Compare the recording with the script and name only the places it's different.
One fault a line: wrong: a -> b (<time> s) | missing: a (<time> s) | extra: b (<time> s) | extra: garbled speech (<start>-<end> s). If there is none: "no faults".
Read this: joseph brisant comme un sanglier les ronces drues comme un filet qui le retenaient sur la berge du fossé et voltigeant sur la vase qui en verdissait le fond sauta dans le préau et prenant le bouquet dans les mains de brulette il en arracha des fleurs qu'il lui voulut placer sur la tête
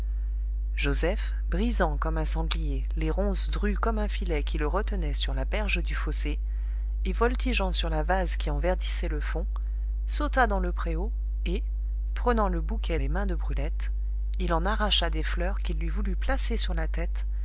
missing: dans (13.0 s)